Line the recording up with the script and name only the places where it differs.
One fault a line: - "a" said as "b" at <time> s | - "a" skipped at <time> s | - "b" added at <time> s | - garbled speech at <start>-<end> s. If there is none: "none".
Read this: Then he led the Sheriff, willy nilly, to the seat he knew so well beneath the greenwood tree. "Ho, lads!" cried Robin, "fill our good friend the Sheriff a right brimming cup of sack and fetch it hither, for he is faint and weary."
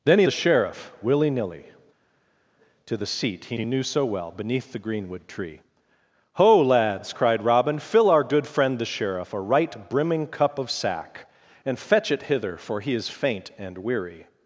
- "led" skipped at 0.3 s
- "he" added at 3.5 s